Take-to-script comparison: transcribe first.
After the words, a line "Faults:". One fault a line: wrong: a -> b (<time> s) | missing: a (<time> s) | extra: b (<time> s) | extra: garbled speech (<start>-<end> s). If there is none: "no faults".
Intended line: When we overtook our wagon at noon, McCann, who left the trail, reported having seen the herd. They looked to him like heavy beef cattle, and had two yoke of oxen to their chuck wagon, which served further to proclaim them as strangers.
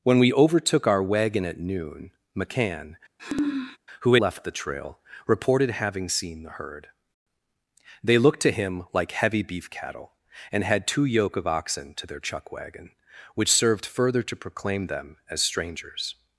When we overtook our wagon at noon, McCann, who left the trail, reported having seen the herd. They looked to him like heavy beef cattle, and had two yoke of oxen to their chuck wagon, which served further to proclaim them as strangers.
Faults:
no faults